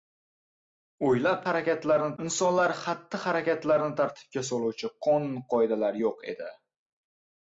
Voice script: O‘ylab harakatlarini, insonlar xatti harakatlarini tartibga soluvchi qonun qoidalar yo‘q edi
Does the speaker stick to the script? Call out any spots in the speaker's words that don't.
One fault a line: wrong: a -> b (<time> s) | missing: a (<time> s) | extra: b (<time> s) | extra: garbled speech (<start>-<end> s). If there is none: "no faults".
no faults